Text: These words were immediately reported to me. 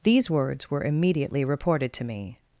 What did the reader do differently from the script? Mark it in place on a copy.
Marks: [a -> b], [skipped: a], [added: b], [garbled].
These words were immediately reported to me.